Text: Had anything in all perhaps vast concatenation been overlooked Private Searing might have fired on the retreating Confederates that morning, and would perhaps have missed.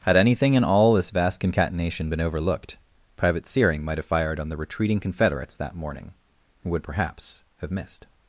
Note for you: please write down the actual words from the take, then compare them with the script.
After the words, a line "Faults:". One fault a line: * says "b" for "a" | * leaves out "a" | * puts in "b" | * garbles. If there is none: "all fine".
Had anything in all this vast concatenation been overlooked Private Searing might have fired on the retreating Confederates that morning, and would perhaps have missed.
Faults:
* says "this" for "perhaps"